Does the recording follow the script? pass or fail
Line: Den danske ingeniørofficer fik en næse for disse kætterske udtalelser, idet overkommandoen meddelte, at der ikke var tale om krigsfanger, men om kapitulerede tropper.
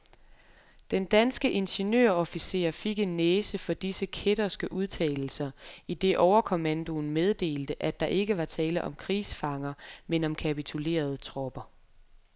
pass